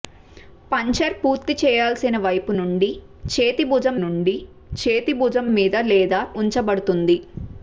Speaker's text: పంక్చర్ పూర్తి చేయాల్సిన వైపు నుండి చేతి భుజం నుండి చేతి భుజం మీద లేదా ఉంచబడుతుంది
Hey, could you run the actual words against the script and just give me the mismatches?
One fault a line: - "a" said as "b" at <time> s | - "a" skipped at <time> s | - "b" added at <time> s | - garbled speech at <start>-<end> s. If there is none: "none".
none